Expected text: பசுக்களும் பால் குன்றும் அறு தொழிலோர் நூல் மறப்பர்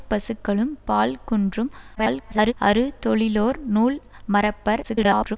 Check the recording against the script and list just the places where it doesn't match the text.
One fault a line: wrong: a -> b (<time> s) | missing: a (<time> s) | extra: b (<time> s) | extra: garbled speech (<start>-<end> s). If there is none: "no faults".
extra: garbled speech (2.0-2.5 s)
extra: garbled speech (4.8-5.4 s)